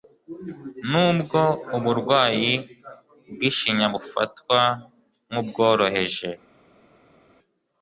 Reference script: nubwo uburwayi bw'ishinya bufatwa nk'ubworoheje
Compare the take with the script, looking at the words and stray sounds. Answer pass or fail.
pass